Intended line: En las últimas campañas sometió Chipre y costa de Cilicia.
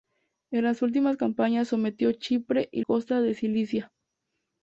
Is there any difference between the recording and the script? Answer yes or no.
no